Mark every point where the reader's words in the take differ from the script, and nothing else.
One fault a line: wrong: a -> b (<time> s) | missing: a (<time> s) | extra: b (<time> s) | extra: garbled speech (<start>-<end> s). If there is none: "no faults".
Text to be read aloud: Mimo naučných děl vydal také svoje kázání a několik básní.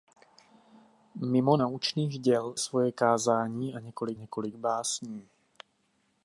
missing: vydal také (2.6 s)
extra: několik (4.1 s)